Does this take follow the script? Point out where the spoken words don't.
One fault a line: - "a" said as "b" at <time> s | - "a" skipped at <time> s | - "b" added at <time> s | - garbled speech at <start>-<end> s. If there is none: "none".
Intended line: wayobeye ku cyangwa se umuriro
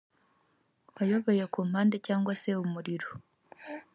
- "mpande" added at 1.7 s